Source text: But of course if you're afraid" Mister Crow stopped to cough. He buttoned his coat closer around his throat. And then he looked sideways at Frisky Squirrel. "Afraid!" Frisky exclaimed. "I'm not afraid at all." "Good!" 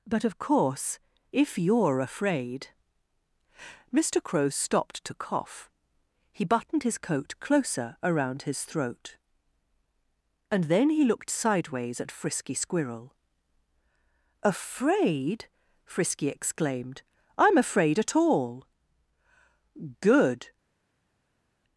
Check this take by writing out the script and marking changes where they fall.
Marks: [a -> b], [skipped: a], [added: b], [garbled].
But of course if you're afraid" Mister Crow stopped to cough. He buttoned his coat closer around his throat. And then he looked sideways at Frisky Squirrel. "Afraid!" Frisky exclaimed. "I'm [skipped: not] afraid at all." "Good!"